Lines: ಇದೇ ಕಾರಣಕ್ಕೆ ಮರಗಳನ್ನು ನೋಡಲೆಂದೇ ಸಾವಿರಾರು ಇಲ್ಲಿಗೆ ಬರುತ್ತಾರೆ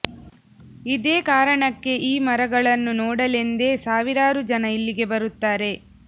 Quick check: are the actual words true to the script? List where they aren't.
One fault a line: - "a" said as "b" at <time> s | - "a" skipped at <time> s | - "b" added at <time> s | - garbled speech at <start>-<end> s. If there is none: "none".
- "ಈ" added at 2.0 s
- "ಜನ" added at 4.5 s